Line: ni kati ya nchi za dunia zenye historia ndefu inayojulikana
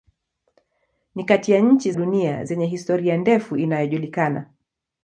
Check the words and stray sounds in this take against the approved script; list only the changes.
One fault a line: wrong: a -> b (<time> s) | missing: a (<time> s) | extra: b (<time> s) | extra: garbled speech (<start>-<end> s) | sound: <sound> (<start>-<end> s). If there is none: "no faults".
missing: za (1.9 s)